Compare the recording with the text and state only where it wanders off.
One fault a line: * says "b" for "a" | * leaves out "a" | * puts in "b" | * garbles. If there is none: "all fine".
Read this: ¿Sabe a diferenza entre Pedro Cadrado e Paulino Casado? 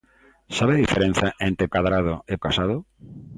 * leaves out "Pedro"
* leaves out "Paulino"